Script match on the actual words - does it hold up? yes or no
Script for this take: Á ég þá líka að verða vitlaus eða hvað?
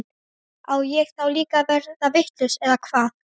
yes